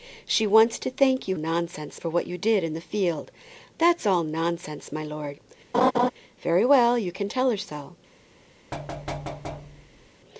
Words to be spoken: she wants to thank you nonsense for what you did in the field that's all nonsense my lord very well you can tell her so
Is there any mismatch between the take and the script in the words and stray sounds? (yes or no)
yes